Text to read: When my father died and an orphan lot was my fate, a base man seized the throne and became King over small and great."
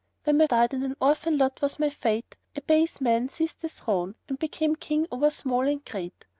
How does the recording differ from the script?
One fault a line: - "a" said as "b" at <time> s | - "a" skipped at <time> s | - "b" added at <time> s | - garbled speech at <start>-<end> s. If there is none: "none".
- "father" skipped at 0.5 s